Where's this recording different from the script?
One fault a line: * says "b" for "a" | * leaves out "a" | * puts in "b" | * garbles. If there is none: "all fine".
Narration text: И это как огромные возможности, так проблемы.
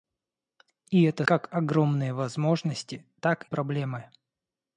all fine